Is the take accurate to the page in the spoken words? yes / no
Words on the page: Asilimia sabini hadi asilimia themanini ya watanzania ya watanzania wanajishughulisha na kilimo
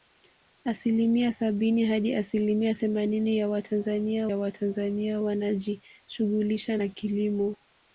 yes